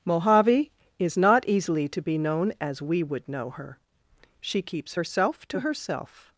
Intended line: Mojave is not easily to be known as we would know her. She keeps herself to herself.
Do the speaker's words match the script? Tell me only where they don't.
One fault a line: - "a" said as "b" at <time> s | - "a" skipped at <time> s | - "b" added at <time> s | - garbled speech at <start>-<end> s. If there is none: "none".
none